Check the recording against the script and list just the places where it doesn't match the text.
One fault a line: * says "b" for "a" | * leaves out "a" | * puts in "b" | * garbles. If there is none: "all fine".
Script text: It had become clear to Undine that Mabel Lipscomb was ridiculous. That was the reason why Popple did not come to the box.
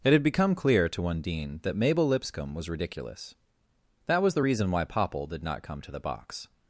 all fine